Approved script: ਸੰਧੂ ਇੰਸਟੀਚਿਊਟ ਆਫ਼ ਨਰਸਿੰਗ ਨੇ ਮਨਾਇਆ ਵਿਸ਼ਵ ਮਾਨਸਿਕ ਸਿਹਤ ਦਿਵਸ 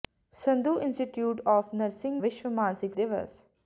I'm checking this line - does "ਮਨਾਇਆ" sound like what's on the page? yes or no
no